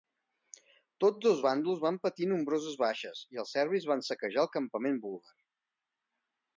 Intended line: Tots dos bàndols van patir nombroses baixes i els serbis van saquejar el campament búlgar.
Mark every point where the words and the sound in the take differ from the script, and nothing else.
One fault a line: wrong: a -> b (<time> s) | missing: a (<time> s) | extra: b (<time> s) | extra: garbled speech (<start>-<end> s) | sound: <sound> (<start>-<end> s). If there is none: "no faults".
no faults